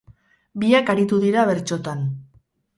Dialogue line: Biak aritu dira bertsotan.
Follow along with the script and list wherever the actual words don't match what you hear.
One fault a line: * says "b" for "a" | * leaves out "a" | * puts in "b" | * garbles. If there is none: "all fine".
all fine